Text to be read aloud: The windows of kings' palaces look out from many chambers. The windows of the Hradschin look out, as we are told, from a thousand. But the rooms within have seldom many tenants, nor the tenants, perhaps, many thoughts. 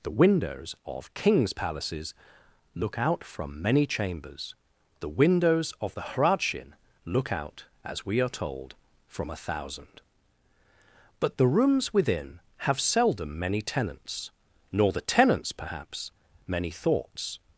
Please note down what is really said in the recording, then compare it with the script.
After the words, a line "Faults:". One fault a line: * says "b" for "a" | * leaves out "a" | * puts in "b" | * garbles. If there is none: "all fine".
The windows of kings' palaces look out from many chambers. The windows of the Hradschin look out, as we are told, from a thousand. But the rooms within have seldom many tenants, nor the tenants, perhaps, many thoughts.
Faults:
all fine